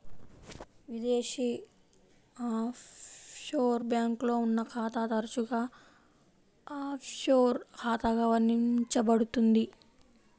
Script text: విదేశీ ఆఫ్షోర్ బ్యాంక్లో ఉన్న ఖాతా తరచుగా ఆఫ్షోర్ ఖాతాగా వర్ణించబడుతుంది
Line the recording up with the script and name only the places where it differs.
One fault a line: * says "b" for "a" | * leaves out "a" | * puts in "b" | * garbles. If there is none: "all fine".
all fine